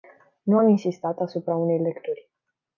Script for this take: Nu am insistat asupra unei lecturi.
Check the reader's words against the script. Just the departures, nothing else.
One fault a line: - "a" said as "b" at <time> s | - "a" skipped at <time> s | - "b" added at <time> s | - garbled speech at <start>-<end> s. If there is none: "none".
none